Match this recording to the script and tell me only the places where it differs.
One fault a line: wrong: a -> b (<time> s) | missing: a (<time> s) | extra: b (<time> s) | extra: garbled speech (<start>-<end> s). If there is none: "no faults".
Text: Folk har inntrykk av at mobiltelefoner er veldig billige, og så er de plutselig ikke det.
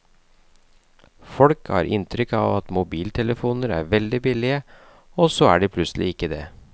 no faults